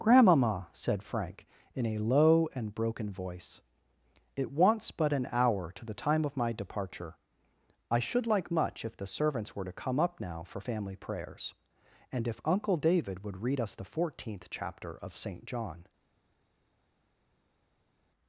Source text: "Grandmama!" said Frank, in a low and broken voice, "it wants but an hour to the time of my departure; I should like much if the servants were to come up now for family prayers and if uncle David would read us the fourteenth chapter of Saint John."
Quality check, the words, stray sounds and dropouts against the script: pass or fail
pass